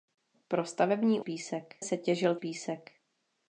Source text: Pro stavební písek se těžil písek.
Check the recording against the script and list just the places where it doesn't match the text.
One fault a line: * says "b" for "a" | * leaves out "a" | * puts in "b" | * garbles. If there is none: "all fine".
all fine